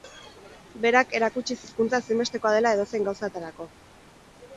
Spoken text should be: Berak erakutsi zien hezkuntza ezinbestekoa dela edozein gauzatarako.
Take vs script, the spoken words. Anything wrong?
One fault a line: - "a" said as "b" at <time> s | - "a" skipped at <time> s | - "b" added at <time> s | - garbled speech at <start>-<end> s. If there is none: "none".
- "zien" skipped at 1.6 s